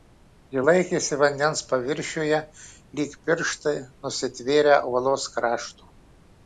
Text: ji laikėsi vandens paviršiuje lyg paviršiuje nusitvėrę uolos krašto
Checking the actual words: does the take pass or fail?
fail